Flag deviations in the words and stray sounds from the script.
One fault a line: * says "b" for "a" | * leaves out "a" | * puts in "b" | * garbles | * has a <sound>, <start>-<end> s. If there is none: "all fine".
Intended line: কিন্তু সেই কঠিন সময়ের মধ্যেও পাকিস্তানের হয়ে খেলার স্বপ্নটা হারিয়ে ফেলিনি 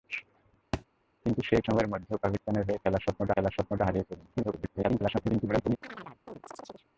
* has a thud, 0.7-0.9 s
* leaves out "কঠিন"
* puts in "খেলার স্বপ্নটা"
* garbles
* has a chirp, 5.8-6.9 s